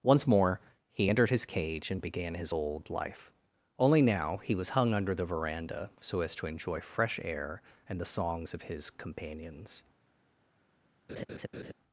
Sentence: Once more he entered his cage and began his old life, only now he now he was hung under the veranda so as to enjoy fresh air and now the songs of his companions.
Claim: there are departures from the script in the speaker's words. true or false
true